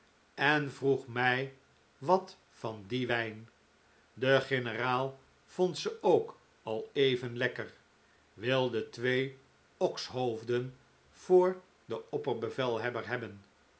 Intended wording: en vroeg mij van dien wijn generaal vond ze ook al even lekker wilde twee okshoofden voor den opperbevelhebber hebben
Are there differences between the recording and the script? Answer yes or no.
yes